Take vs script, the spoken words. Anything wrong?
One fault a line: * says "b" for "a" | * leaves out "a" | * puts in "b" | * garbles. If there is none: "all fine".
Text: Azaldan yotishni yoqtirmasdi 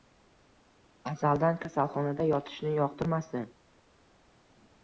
* puts in "kasalxonada"